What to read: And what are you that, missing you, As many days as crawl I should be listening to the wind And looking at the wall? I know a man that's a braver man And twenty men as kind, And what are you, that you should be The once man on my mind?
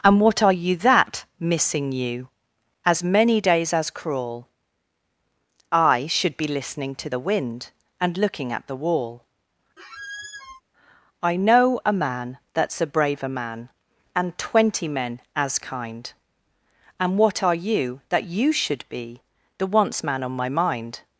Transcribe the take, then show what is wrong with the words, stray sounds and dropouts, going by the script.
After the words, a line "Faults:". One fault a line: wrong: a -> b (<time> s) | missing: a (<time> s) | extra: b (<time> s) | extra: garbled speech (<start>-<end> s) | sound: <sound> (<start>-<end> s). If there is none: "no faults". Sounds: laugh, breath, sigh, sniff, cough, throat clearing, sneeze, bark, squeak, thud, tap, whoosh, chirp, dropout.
And what are you that, missing you, As many days as crawl I should be listening to the wind And looking at the wall? I know a man that's a braver man And twenty men as kind, And what are you, that you should be The once man on my mind?
Faults:
sound: squeak (9.8-10.6 s)